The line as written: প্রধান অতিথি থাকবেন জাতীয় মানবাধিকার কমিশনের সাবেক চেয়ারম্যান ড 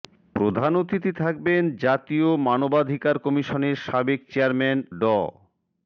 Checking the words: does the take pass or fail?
pass